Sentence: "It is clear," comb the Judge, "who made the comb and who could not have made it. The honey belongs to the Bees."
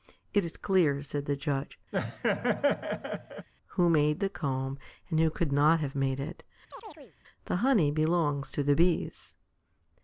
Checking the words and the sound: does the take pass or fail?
fail